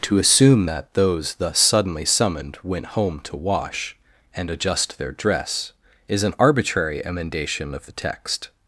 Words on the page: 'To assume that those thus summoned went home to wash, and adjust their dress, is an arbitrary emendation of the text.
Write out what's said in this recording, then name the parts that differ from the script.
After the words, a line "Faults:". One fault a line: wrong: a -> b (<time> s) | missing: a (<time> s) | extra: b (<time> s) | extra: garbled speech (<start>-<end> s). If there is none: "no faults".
'To assume that those thus suddenly summoned went home to wash, and adjust their dress, is an arbitrary emendation of the text.
Faults:
extra: suddenly (1.6 s)